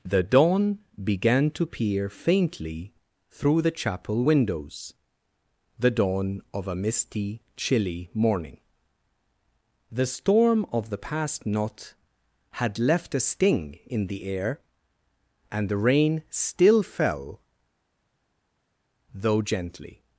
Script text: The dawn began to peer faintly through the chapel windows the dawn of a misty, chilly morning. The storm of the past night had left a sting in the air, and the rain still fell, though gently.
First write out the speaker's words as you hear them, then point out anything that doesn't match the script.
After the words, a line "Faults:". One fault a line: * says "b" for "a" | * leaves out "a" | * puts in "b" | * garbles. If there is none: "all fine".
The dawn began to peer faintly through the chapel windows the dawn of a misty, chilly morning. The storm of the past knot had left a sting in the air, and the rain still fell, though gently.
Faults:
* says "knot" for "night"